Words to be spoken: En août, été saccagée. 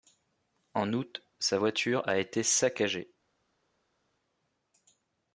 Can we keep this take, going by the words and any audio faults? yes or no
no